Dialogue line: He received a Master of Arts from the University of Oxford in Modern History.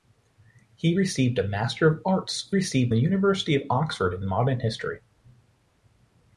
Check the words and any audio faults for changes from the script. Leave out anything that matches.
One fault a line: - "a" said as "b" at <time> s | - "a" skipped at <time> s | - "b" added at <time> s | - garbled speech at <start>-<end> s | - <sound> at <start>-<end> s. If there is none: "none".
- "from" said as "received" at 2.5 s